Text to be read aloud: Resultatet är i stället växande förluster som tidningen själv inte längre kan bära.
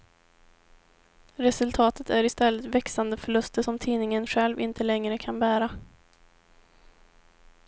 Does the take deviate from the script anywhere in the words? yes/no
no